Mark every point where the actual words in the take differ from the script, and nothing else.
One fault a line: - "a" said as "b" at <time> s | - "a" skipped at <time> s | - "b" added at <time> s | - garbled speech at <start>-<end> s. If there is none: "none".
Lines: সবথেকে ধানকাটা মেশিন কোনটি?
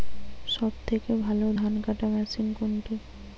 - "ভালো" added at 1.2 s